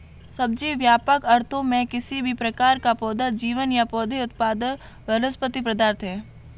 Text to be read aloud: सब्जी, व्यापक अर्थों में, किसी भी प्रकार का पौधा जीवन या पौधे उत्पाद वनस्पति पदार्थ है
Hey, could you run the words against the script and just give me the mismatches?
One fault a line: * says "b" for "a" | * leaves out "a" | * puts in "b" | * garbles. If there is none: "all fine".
all fine